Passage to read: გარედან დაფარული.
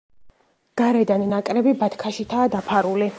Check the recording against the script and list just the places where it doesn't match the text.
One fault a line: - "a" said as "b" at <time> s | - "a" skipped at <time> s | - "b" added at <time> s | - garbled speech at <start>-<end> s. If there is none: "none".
- "ნაკრები ბათქაშითაა" added at 1.3 s